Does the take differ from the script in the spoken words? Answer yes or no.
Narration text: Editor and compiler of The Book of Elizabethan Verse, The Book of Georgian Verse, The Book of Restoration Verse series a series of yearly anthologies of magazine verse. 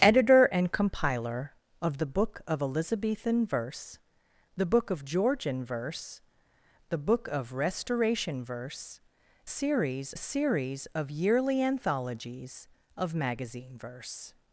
no